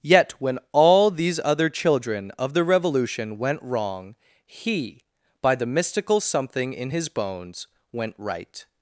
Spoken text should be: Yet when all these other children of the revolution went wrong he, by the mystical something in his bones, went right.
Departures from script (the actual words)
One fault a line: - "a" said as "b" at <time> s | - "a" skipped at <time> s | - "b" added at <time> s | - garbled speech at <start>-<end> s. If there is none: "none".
none